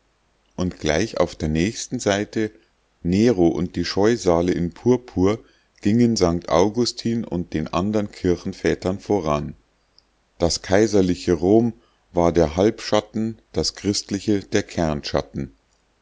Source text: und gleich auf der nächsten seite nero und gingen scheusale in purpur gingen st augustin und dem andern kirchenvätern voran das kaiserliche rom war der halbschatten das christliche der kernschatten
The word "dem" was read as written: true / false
false